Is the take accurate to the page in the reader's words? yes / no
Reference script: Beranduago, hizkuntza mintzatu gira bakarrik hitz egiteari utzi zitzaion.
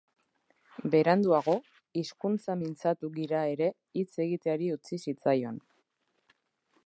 no